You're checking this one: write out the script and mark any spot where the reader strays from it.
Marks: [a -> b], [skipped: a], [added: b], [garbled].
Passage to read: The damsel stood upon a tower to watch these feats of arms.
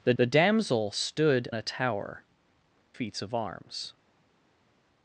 The [added: the] damsel stood [skipped: upon] a tower [skipped: to watch these] feats of arms.